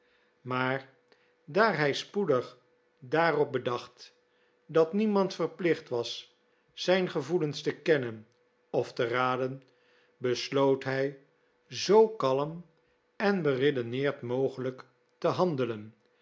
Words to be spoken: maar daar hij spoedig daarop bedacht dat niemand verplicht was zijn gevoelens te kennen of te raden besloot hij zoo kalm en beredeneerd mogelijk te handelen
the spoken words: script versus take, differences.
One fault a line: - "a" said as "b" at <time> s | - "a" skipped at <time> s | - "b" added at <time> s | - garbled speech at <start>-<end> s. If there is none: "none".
none